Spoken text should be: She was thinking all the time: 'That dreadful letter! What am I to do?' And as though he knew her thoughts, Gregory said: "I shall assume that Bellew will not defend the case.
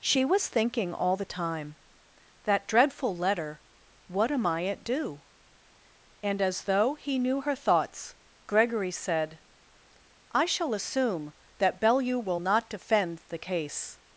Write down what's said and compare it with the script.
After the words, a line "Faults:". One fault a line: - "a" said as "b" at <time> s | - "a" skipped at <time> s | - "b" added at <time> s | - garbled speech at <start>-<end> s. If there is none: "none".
She was thinking all the time: 'That dreadful letter! What am I at do?' And as though he knew her thoughts, Gregory said: "I shall assume that Bellew will not defend the case.
Faults:
- "to" said as "at" at 4.6 s